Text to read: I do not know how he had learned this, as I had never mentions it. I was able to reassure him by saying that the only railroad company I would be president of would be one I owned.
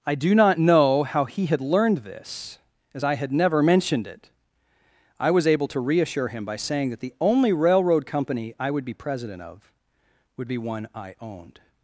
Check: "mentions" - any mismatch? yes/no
yes